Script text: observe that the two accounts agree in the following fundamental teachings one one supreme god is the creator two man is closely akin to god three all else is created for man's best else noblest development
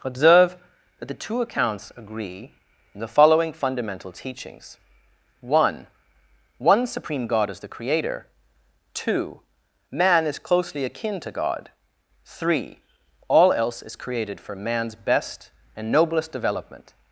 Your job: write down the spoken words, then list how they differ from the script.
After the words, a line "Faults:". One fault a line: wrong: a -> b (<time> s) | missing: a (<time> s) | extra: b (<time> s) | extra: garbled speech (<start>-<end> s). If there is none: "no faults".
observe that the two accounts agree in the following fundamental teachings one one supreme god is the creator two man is closely akin to god three all else is created for man's best and noblest development
Faults:
wrong: else -> and (15.8 s)